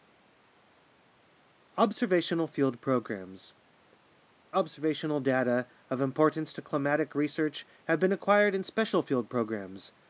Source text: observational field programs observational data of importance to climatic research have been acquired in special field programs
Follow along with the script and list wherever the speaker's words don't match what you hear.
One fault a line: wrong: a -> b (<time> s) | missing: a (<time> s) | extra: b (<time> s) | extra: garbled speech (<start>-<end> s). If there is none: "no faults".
no faults